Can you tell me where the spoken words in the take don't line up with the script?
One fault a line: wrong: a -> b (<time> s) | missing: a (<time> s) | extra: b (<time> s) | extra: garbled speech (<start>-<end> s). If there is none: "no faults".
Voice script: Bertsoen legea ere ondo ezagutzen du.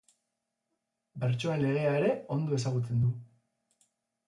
no faults